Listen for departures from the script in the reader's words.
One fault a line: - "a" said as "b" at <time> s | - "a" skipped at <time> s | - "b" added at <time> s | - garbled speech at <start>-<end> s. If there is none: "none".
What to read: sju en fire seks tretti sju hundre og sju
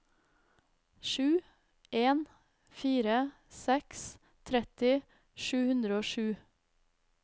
none